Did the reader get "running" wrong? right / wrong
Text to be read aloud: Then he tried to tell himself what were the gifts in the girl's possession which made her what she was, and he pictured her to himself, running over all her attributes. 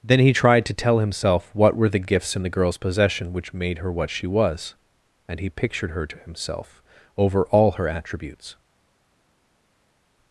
wrong